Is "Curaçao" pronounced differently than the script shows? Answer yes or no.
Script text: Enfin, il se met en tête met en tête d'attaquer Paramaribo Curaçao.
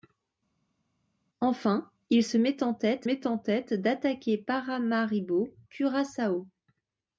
no